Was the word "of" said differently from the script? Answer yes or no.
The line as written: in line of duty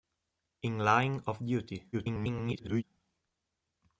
no